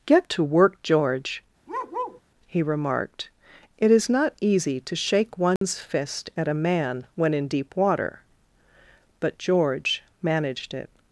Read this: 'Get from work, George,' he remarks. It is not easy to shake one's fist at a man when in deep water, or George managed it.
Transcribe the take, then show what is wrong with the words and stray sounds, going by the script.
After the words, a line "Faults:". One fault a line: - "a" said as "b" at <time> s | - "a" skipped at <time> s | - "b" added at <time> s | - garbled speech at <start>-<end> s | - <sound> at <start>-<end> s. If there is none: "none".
'Get to work, George,' he remarked. It is not easy to shake one's fist at a man when in deep water, but George managed it.
Faults:
- "from" said as "to" at 0.3 s
- bark at 1.7-2.2 s
- "remarks" said as "remarked" at 2.6 s
- dropout at 5.6-5.6 s
- "or" said as "but" at 9.2 s